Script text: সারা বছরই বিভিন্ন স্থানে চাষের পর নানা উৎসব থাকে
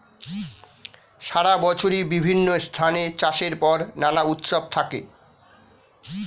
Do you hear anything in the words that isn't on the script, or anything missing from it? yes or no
no